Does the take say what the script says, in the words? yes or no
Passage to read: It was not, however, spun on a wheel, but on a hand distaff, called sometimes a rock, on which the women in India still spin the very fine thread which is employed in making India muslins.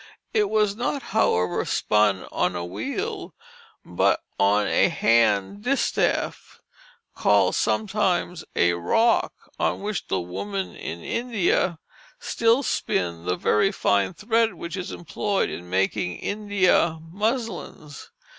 yes